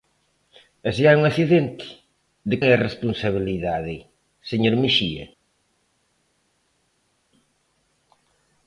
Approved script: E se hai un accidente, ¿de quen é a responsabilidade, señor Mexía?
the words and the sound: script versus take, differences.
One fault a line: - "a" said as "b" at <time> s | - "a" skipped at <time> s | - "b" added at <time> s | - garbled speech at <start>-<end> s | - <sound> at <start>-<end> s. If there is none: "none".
- "quen" skipped at 2.5 s